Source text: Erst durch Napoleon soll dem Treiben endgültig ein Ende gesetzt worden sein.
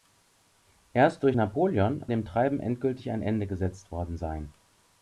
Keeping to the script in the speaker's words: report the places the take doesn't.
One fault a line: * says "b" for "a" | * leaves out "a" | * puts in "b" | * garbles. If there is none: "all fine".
* leaves out "soll"